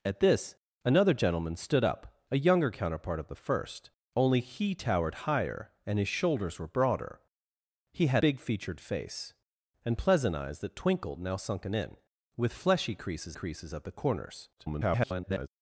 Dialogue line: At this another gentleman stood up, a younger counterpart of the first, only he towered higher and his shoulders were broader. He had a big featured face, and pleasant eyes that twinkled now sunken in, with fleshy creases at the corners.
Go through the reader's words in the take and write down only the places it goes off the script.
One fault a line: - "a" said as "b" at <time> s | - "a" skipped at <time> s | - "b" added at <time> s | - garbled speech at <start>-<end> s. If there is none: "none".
- "a" skipped at 8.2 s
- "creases" added at 13.3 s
- garbled speech at 14.6-15.5 s